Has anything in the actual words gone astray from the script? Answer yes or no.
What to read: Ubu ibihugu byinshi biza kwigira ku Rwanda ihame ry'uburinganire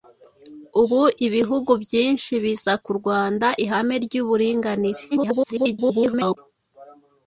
yes